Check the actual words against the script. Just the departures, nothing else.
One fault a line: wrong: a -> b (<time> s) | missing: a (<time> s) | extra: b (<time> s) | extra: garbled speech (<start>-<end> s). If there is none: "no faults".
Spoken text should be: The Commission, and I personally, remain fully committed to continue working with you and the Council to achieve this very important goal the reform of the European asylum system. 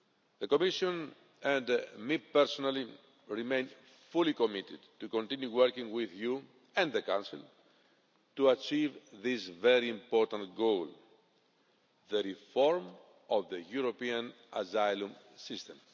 no faults